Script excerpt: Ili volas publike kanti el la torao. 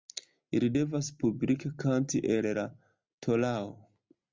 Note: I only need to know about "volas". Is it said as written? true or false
false